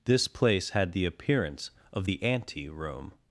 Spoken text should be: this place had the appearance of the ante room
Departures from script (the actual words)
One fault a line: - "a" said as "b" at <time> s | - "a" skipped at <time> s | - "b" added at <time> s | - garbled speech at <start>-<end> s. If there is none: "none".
none